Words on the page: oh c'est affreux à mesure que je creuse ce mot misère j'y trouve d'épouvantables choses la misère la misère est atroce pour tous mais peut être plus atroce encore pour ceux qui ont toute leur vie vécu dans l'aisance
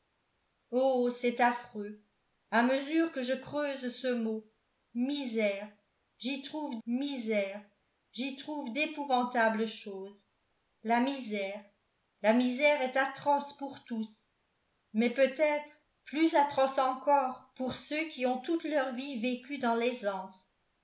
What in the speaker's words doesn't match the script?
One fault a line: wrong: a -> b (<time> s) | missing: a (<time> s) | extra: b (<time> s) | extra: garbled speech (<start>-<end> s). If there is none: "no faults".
extra: misère j'y trouve (6.9 s)